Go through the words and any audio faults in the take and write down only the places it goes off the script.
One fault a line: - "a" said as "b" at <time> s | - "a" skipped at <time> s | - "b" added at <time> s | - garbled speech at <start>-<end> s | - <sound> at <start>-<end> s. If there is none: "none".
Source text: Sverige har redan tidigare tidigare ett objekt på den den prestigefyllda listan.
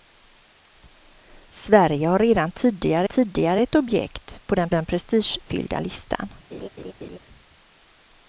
- laugh at 6.5-7.2 s